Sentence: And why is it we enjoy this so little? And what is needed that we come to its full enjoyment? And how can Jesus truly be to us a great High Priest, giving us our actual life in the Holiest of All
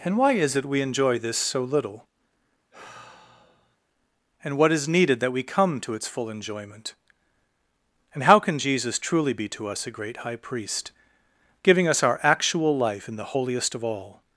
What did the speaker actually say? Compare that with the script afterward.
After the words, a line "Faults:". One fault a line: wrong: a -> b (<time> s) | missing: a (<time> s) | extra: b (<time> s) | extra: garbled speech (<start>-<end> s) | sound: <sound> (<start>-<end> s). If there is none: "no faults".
And why is it we enjoy this so little? And what is needed that we come to its full enjoyment? And how can Jesus truly be to us a great High Priest, giving us our actual life in the Holiest of All
Faults:
sound: sigh (2.7-3.8 s)